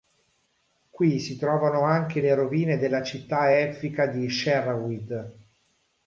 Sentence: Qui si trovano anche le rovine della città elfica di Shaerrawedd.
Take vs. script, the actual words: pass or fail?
pass